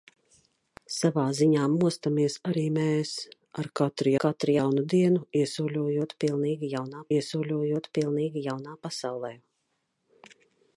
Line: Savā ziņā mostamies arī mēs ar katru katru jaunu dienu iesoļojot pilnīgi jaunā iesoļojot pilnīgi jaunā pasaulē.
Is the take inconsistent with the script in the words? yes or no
no